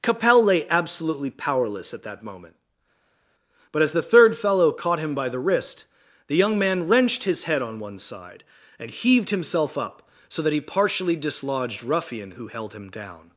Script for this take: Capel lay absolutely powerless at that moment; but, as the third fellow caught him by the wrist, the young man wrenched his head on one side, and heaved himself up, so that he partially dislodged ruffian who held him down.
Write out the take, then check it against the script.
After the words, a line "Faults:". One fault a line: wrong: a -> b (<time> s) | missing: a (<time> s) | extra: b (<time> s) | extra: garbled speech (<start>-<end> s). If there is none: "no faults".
Capel lay absolutely powerless at that moment; but, as the third fellow caught him by the wrist, the young man wrenched his head on one side, and heaved himself up, so that he partially dislodged ruffian who held him down.
Faults:
no faults